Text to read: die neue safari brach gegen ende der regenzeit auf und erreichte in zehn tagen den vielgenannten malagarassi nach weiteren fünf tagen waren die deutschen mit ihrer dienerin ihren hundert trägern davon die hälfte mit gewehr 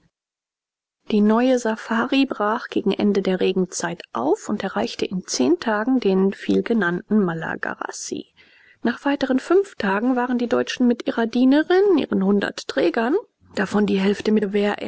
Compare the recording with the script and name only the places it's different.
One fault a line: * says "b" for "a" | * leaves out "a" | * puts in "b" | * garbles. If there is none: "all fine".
all fine